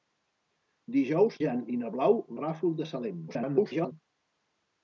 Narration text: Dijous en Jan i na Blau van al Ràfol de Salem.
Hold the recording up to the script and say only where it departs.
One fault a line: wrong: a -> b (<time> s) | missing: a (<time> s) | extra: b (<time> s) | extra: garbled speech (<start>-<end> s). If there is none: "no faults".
missing: en (1.4 s)
missing: van al (2.2 s)
extra: garbled speech (3.3-3.9 s)